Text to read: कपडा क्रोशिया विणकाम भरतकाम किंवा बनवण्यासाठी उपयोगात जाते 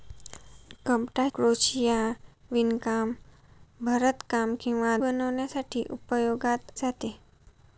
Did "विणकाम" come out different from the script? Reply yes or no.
no